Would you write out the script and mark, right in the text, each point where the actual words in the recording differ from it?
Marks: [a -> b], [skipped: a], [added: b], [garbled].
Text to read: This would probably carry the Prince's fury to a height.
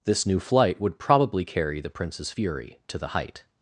This [added: new flight] would probably carry the Prince's fury to [a -> the] height.